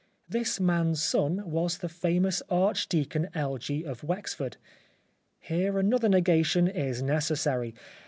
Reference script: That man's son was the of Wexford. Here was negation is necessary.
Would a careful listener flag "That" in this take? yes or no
yes